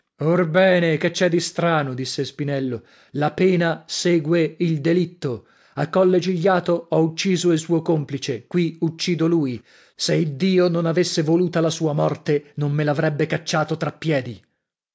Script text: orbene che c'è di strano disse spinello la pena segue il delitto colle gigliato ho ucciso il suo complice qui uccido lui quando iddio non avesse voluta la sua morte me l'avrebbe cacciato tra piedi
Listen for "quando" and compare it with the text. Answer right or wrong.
wrong